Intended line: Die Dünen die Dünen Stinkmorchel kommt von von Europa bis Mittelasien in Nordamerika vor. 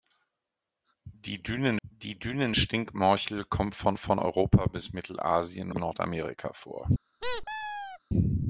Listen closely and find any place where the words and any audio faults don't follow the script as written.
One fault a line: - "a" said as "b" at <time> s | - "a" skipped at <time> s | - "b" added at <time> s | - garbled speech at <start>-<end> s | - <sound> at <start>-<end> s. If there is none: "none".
- squeak at 7.2-8.0 s